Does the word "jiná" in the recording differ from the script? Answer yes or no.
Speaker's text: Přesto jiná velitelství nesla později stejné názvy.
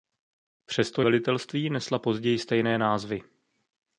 yes